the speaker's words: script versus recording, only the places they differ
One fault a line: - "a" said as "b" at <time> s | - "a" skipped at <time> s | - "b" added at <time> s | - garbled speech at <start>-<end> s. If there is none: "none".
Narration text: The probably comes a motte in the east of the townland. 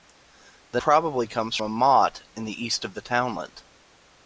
none